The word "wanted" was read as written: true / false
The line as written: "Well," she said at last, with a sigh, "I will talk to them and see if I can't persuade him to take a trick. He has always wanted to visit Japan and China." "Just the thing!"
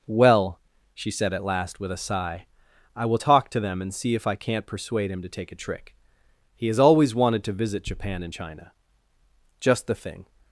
true